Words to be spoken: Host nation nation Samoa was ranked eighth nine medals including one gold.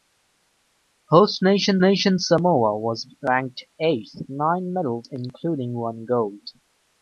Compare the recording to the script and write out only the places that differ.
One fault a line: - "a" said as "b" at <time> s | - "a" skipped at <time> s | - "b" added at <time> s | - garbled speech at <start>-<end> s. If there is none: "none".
none